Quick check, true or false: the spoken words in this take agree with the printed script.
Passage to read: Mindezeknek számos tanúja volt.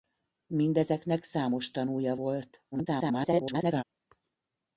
false